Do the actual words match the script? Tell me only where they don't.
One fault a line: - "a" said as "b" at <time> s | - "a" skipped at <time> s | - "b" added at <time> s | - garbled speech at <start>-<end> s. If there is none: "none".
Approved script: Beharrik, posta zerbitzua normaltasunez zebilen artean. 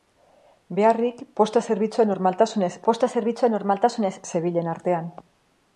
- "posta zerbitzua normaltasunez" added at 2.9 s